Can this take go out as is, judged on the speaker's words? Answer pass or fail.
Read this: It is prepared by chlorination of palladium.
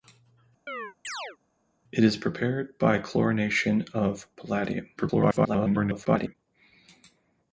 fail